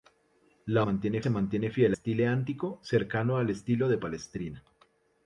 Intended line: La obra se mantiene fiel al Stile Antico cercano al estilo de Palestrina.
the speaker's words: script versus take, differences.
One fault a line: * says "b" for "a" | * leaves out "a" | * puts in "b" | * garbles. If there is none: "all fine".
* says "mantiene" for "obra"
* leaves out "al"